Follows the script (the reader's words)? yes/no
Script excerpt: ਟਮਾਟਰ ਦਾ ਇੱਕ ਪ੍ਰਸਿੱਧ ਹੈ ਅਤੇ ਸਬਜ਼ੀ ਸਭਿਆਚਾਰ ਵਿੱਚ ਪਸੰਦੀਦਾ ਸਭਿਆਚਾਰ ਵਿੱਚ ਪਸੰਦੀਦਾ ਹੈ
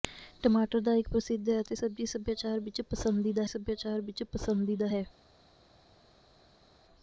yes